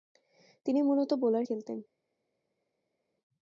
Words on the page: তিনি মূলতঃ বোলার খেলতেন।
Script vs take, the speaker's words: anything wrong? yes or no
no